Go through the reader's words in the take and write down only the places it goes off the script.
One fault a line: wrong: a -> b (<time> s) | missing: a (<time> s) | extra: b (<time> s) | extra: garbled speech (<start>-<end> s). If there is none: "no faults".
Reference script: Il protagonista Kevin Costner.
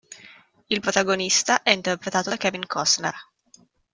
extra: è interpretato da (1.6 s)